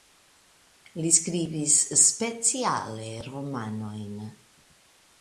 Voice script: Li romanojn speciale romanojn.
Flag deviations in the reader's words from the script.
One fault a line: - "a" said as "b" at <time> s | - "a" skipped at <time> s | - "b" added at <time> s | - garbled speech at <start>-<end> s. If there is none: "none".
- "romanojn" said as "skribis" at 1.2 s